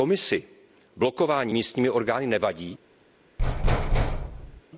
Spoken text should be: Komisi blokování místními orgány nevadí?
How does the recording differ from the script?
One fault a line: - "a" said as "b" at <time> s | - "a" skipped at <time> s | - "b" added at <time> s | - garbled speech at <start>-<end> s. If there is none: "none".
none